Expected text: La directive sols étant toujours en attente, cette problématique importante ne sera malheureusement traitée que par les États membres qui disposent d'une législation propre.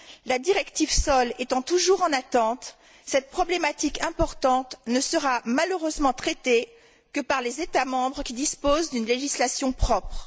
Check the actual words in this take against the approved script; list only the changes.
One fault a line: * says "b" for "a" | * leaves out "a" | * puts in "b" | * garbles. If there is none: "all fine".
all fine